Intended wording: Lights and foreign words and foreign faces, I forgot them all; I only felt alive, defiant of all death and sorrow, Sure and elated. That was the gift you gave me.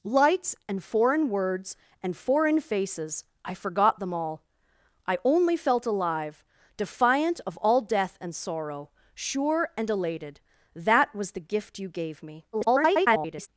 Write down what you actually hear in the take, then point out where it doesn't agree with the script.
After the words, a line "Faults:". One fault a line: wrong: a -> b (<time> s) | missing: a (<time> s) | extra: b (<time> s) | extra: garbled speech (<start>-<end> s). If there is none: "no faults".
Lights and foreign words and foreign faces, I forgot them all; I only felt alive, defiant of all death and sorrow, Sure and elated. That was the gift you gave me. [garbled]
Faults:
extra: garbled speech (12.5-13.5 s)